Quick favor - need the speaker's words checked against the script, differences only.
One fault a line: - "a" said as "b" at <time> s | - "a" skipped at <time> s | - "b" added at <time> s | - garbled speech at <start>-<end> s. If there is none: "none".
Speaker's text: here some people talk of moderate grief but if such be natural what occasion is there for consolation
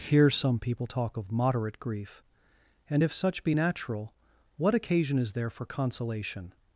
- "but" said as "and" at 2.9 s